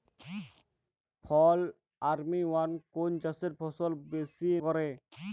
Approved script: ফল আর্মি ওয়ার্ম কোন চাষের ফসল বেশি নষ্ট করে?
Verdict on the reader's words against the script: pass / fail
fail